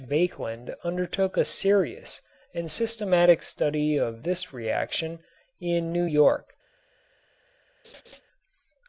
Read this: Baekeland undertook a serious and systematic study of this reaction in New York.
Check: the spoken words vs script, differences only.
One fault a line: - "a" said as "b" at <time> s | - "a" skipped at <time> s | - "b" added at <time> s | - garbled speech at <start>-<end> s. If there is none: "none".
none